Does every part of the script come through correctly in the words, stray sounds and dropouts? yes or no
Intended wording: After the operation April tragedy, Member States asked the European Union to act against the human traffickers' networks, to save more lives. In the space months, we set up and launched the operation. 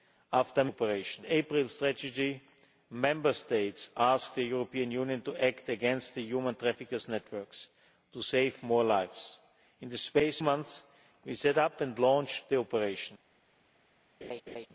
no